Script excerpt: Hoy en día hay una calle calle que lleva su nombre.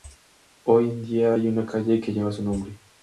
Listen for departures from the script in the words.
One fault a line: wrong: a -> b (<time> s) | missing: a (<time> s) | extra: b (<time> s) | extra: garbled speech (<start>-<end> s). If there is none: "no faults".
missing: calle (2.0 s)